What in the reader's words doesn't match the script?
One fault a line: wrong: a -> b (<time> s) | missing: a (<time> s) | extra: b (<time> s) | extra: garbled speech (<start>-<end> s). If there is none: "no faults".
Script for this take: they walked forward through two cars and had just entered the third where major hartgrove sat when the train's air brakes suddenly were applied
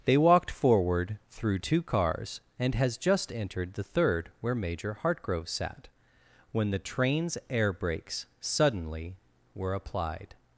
wrong: had -> has (2.7 s)